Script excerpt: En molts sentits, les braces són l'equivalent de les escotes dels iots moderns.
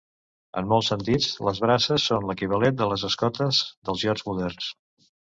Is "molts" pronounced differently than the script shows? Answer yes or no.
no